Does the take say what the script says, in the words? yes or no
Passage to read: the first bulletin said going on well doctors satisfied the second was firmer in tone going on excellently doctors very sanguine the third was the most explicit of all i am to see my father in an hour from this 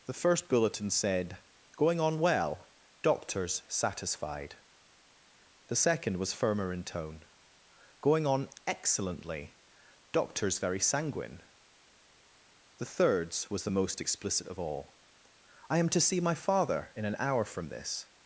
no